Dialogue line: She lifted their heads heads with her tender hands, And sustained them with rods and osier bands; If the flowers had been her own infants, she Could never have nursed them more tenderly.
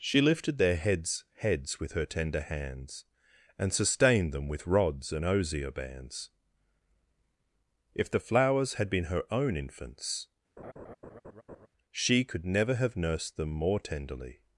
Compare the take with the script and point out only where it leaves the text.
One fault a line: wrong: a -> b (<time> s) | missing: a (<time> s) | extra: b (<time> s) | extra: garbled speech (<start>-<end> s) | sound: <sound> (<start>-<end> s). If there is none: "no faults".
sound: laugh (10.6-11.7 s)